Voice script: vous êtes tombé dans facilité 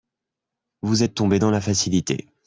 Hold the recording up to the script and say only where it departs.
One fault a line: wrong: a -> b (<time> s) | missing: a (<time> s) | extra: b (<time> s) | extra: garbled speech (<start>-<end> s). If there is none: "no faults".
extra: la (1.5 s)